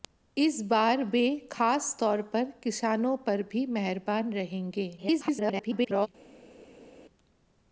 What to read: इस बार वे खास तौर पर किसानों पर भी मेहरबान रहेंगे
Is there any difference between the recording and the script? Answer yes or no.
yes